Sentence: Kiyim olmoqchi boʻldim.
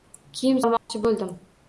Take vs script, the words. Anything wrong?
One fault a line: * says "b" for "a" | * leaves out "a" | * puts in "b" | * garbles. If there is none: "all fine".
all fine